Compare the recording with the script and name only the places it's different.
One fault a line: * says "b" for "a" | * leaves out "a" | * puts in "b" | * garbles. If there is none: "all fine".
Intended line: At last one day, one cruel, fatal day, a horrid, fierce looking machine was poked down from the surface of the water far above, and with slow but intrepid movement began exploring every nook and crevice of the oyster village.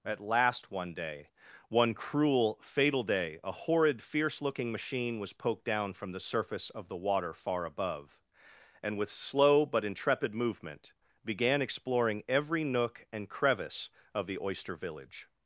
all fine